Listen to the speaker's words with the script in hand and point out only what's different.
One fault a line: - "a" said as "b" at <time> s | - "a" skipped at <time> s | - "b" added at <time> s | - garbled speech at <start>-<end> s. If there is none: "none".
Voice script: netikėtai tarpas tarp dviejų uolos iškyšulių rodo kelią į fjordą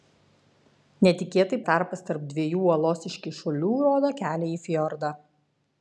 none